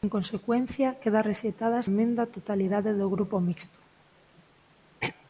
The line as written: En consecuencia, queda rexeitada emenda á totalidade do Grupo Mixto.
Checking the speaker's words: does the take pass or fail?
pass